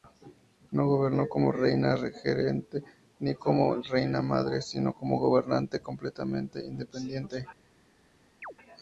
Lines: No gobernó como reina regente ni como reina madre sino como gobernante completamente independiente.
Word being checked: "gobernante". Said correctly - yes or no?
yes